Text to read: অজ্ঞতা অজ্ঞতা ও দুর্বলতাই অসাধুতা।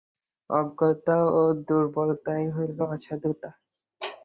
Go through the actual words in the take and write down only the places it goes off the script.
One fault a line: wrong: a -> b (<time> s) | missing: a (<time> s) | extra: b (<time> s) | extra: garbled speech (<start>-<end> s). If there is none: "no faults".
missing: অজ্ঞতা (1.2 s)
extra: হইল (2.5 s)